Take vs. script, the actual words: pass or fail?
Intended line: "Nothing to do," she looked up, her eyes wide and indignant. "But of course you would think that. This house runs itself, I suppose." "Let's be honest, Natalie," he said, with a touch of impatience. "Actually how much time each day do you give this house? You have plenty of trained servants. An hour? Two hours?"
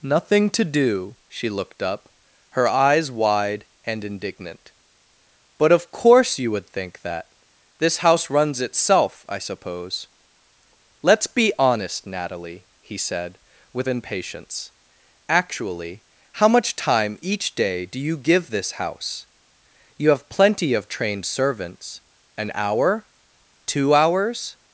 fail